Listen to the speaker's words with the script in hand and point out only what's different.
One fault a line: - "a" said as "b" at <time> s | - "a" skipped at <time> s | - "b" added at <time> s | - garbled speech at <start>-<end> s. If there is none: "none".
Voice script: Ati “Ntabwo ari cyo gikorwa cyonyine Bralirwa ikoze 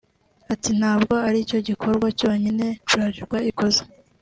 none